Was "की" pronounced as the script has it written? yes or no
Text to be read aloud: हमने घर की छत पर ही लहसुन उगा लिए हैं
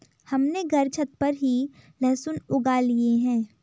no